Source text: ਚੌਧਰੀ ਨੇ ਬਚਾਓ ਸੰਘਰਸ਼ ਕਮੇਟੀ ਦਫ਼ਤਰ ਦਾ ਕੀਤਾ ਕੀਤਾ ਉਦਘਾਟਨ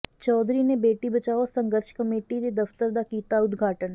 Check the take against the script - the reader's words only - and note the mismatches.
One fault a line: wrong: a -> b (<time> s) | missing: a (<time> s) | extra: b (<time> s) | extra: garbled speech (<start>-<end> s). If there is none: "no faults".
extra: ਬੇਟੀ (0.8 s)
extra: ਦੇ (2.4 s)
missing: ਕੀਤਾ (3.4 s)